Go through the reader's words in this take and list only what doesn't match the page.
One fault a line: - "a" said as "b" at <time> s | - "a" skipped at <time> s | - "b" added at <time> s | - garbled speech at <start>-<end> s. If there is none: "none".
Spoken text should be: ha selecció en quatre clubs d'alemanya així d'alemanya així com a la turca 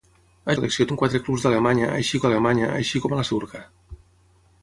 none